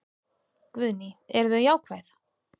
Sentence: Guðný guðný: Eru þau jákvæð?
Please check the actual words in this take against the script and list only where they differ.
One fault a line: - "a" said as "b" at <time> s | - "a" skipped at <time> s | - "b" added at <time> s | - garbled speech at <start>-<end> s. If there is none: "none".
- "guðný" skipped at 1.1 s